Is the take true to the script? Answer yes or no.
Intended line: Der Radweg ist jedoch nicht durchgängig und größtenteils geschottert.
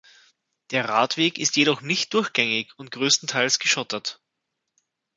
yes